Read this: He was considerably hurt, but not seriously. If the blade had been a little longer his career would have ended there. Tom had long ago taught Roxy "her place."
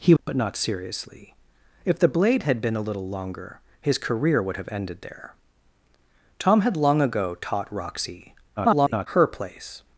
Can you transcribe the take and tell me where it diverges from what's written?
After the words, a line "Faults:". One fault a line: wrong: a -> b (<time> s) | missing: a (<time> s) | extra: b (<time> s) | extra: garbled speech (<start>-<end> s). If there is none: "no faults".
He but not seriously. If the blade had been a little longer his career would have ended there. Tom had long ago taught Roxy [garbled] "her place."
Faults:
missing: was considerably hurt (0.1 s)
extra: garbled speech (8.6-9.1 s)